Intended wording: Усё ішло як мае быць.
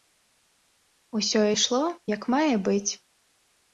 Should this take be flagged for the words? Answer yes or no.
no